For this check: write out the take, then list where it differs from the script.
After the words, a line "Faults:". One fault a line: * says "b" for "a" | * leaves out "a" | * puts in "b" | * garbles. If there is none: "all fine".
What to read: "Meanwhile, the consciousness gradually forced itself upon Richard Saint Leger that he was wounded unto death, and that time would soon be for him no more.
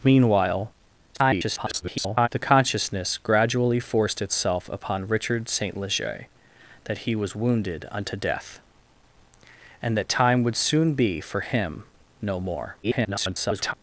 "Meanwhile, [garbled] the consciousness gradually forced itself upon Richard Saint Leger that he was wounded unto death, and that time would soon be for him no more. [garbled]
Faults:
* garbles
* garbles